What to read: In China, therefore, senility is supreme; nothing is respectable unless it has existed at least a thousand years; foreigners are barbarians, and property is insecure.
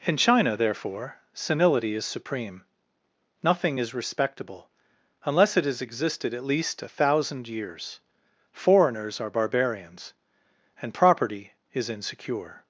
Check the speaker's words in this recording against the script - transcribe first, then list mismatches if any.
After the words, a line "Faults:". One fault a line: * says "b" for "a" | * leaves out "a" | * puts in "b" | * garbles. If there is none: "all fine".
In China, therefore, senility is supreme; nothing is respectable unless it has existed at least a thousand years; foreigners are barbarians, and property is insecure.
Faults:
all fine